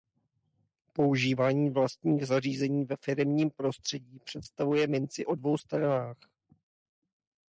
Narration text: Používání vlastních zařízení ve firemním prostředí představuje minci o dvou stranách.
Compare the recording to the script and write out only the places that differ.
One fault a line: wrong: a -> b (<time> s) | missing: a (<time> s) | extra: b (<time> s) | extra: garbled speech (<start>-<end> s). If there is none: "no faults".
no faults